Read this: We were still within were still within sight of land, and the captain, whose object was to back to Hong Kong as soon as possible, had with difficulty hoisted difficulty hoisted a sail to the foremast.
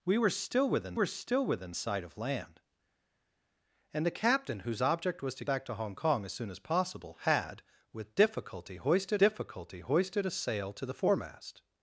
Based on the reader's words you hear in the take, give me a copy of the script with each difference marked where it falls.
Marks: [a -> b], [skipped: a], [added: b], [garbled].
We were still within were still within sight of land, and the captain, whose object was to back to Hong Kong as soon as possible, had with difficulty hoisted difficulty hoisted a sail to the foremast.